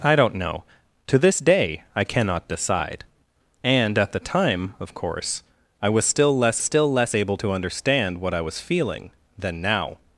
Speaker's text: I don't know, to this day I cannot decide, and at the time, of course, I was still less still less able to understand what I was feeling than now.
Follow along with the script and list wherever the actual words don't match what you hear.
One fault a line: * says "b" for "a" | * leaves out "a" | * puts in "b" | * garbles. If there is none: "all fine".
all fine